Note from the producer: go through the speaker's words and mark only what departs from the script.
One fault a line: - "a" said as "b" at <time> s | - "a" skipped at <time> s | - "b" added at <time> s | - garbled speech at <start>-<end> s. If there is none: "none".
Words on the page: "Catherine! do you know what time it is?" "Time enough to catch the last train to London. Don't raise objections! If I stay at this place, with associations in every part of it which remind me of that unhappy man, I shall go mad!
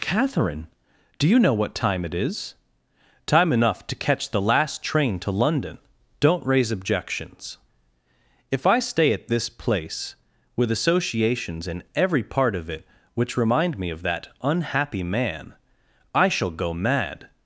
none